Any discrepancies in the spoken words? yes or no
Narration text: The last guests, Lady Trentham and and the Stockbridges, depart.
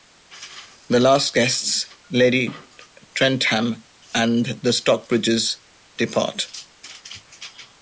yes